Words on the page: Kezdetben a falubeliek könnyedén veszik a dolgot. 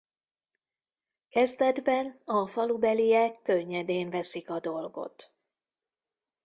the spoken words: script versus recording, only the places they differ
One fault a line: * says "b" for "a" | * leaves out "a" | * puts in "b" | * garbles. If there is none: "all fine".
all fine